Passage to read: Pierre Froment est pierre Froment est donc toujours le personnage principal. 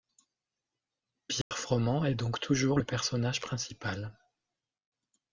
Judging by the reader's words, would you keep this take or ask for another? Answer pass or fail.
fail